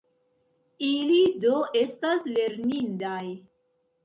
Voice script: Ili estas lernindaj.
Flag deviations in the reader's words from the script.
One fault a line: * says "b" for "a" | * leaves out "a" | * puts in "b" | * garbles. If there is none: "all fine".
* puts in "do"